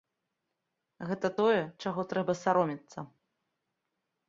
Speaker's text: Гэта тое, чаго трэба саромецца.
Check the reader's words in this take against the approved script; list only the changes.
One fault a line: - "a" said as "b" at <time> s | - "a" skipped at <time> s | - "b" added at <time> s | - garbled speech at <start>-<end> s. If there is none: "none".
none